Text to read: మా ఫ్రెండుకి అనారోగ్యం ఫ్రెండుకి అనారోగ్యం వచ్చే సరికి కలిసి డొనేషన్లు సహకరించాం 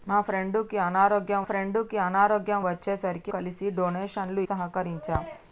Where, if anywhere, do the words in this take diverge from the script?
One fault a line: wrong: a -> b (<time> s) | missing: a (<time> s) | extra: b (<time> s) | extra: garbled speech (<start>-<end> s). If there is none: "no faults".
no faults